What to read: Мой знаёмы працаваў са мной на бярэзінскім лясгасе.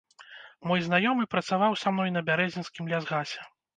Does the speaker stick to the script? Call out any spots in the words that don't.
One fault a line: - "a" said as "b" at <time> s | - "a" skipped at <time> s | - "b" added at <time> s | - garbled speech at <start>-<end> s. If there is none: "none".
none